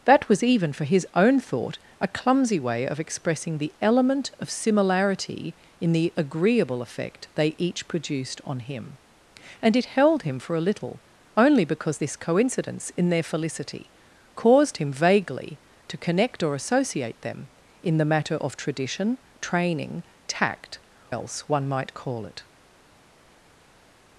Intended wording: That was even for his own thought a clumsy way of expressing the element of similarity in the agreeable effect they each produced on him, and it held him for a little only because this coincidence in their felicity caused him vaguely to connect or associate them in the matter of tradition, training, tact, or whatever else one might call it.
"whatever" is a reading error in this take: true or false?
true